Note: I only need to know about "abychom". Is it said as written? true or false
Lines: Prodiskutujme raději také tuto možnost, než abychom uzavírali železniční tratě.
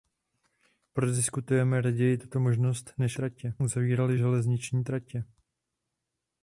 false